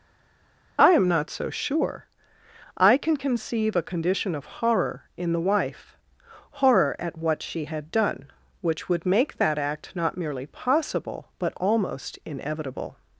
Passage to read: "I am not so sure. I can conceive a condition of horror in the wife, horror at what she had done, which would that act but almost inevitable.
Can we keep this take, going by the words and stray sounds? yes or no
no